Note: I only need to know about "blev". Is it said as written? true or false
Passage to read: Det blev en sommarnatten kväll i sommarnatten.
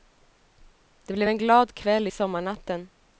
true